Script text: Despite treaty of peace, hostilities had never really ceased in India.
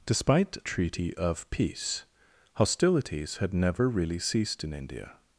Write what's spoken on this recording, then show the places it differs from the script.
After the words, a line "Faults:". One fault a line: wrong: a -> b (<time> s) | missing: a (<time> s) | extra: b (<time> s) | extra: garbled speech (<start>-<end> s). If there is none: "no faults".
Despite treaty of peace, hostilities had never really ceased in India.
Faults:
no faults